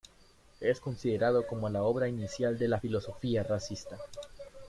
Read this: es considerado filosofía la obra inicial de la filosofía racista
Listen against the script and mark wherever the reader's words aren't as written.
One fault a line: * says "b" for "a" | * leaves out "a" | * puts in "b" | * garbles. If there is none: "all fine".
* says "como" for "filosofía"